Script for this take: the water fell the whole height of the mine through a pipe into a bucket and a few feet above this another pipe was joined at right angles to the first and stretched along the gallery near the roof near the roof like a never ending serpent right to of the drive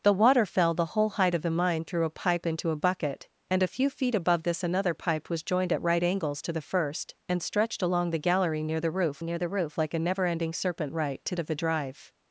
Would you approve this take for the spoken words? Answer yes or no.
yes